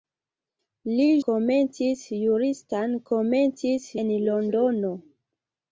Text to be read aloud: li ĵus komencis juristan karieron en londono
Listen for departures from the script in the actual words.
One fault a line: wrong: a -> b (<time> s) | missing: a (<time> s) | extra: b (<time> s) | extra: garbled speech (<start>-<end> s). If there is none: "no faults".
missing: ĵus (1.0 s)
wrong: karieron -> komencis (3.1 s)